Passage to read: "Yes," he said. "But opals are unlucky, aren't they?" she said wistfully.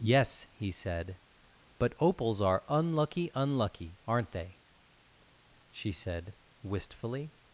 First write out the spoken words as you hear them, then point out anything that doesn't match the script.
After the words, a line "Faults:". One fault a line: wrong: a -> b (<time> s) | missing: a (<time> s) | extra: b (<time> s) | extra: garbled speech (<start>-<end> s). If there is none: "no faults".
"Yes," he said. "But opals are unlucky unlucky, aren't they?" she said wistfully.
Faults:
extra: unlucky (3.3 s)